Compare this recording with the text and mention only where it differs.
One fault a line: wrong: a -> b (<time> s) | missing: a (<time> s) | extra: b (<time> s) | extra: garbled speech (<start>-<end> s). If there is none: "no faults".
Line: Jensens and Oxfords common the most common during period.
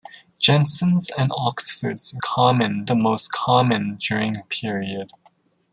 no faults